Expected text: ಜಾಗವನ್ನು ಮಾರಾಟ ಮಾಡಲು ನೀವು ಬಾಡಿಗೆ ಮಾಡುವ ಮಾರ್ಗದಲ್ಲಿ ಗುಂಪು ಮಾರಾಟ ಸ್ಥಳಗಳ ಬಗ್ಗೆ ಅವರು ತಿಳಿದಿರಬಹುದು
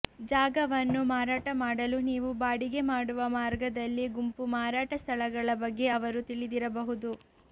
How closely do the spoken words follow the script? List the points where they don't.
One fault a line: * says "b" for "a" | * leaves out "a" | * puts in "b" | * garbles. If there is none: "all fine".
all fine